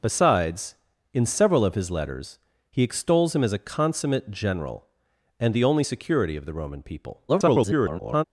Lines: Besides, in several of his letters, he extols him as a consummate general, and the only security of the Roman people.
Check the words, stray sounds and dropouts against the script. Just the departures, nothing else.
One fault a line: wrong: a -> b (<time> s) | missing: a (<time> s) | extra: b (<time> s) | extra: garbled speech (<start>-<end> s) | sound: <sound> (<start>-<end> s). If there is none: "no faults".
extra: garbled speech (7.3-8.2 s)